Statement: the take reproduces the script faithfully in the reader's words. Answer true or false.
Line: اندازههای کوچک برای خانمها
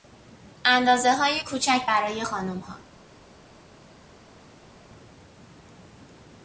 true